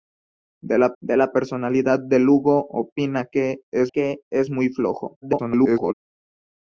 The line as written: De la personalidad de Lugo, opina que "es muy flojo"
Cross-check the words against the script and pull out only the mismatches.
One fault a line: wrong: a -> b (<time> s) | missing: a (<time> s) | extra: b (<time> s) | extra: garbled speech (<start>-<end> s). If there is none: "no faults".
extra: de la (1.0 s)
extra: que es (3.9 s)
extra: garbled speech (5.2-5.9 s)